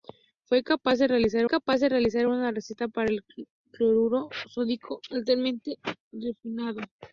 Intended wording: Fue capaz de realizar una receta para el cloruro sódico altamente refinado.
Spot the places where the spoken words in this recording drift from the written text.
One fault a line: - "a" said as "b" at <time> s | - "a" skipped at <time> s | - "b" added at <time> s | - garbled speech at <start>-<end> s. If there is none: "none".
- "capaz de realizar" added at 1.5 s